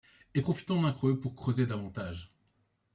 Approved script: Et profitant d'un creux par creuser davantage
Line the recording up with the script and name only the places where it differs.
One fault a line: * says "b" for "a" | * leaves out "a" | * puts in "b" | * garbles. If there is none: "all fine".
* says "pour" for "par"